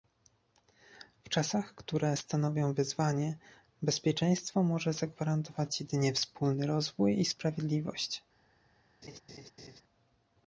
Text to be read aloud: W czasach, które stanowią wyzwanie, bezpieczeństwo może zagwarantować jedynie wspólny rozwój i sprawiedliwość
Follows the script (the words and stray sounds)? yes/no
no